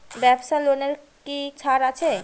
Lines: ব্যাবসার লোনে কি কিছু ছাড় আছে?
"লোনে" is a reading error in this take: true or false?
false